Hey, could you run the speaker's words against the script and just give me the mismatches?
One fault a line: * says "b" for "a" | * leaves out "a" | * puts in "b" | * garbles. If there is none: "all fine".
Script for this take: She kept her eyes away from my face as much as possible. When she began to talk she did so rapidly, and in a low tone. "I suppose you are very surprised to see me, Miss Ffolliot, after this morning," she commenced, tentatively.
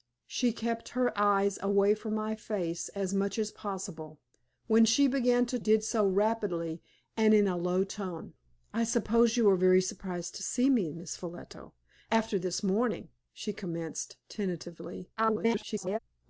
* leaves out "talk she"
* garbles